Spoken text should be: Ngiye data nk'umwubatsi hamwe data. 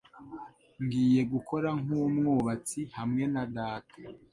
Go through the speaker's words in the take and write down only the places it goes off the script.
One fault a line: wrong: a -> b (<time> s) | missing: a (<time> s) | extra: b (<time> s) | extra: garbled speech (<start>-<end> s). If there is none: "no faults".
wrong: data -> gukora (1.3 s)
extra: na (3.3 s)